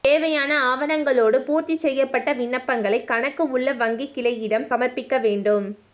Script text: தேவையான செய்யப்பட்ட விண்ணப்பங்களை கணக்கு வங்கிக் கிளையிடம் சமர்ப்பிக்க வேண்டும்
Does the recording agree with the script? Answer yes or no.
no